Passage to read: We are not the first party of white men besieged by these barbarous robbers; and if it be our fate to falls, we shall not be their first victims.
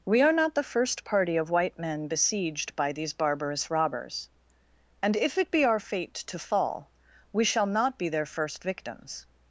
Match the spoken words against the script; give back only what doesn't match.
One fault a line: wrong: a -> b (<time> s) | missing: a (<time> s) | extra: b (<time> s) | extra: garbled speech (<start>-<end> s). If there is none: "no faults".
wrong: falls -> fall (6.4 s)